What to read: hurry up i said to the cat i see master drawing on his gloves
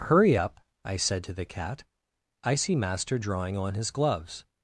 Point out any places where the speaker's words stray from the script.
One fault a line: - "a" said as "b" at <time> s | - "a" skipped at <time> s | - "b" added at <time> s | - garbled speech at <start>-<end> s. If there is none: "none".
none